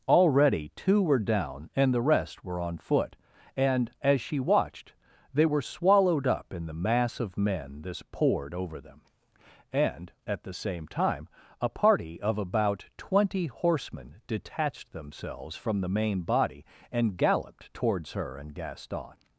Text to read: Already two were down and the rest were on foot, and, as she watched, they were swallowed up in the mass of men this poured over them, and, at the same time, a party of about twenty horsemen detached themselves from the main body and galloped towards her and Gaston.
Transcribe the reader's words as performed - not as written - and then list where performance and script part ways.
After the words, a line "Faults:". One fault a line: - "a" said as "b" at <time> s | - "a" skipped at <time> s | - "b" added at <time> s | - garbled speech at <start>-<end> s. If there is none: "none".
Already two were down and the rest were on foot, and, as she watched, they were swallowed up in the mass of men this poured over them, and, at the same time, a party of about twenty horsemen detached themselves from the main body and galloped towards her and Gaston.
Faults:
none